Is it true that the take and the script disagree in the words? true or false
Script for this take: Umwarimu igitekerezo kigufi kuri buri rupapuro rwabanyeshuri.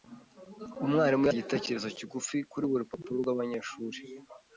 false